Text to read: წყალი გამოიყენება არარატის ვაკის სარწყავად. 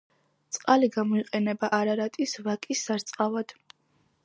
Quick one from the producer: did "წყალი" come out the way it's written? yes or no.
yes